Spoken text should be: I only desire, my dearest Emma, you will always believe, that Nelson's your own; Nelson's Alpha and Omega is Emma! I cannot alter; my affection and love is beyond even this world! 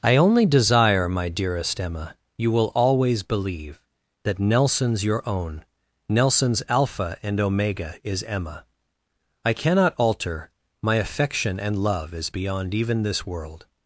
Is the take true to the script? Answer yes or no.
yes